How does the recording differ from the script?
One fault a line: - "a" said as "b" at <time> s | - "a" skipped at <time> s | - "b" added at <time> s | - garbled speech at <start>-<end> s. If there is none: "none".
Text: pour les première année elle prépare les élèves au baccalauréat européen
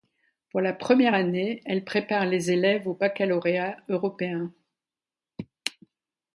- "les" said as "la" at 0.6 s